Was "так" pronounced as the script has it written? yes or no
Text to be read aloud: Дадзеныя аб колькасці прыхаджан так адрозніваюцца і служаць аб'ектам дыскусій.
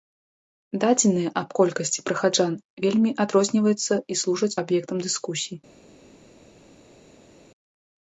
no